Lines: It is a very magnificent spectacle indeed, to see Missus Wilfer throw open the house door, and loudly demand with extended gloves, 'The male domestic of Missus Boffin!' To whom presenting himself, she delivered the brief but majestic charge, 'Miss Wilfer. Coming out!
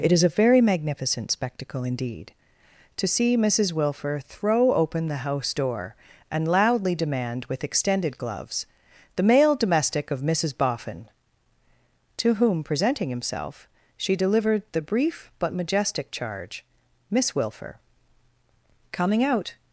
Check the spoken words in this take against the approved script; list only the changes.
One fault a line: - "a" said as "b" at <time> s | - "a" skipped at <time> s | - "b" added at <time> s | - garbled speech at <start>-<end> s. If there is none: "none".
none